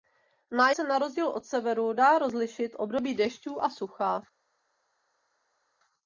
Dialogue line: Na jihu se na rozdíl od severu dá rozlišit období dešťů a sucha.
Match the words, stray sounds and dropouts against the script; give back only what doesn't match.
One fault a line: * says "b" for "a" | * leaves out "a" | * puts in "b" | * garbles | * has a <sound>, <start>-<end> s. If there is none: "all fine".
* leaves out "jihu"